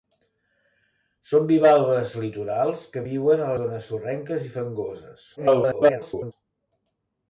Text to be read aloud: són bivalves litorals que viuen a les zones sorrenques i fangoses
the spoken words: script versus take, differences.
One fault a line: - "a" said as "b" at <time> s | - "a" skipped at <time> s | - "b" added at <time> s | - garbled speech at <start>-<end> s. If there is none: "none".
- "les" skipped at 3.5 s
- garbled speech at 5.4-6.3 s